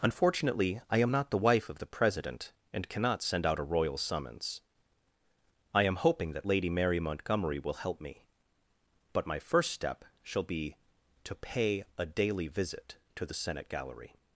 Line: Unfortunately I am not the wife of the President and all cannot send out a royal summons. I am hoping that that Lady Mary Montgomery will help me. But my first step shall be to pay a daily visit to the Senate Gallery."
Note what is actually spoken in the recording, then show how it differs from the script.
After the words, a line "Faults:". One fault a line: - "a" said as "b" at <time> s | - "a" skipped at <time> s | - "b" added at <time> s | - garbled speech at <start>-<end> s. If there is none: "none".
Unfortunately I am not the wife of the President and cannot send out a royal summons. I am hoping that Lady Mary Montgomery will help me. But my first step shall be to pay a daily visit to the Senate Gallery."
Faults:
- "all" skipped at 2.9 s
- "that" skipped at 6.5 s